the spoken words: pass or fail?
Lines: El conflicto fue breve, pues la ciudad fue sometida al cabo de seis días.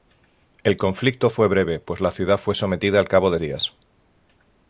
fail